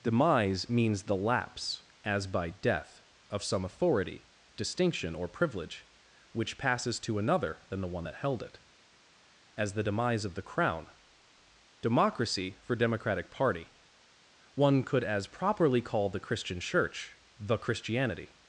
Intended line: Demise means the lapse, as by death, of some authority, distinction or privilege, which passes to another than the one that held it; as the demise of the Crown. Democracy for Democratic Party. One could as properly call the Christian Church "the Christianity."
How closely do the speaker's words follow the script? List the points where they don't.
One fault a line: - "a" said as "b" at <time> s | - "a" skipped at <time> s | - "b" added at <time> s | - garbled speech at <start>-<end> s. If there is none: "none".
none